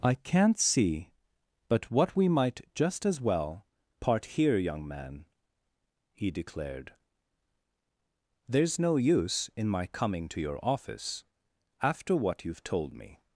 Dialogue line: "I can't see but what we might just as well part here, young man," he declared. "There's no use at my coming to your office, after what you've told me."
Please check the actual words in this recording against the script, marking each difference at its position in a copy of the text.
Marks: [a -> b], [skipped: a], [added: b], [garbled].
"I can't see but what we might just as well part here, young man," he declared. "There's no use [at -> in] my coming to your office, after what you've told me."